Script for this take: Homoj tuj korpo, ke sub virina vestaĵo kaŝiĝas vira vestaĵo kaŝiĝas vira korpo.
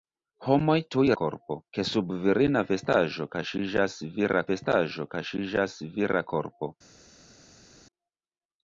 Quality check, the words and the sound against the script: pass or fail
pass